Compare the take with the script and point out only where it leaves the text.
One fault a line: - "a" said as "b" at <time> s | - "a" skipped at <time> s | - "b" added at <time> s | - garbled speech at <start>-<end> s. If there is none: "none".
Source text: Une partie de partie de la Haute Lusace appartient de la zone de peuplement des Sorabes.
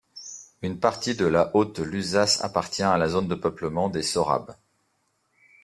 - "partie de" skipped at 1.3 s
- "de" said as "à" at 2.8 s